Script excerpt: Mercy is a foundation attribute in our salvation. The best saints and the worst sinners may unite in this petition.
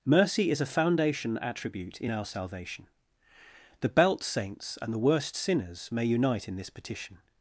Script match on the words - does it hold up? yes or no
no